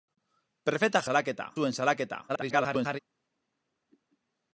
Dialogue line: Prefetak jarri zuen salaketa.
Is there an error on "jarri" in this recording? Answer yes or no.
yes